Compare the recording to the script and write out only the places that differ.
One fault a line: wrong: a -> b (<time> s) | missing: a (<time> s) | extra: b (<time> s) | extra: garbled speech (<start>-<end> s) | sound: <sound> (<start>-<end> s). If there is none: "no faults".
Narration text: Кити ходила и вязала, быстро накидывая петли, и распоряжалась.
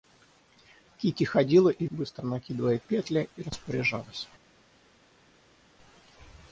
missing: вязала (1.9 s)